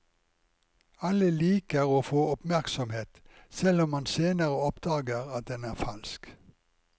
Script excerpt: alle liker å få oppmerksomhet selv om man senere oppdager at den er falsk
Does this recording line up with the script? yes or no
yes